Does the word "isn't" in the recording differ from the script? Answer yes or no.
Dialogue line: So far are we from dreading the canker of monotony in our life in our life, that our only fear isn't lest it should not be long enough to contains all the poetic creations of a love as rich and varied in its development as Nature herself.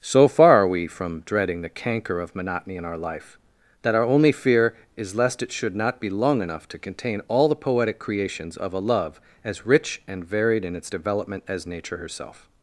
yes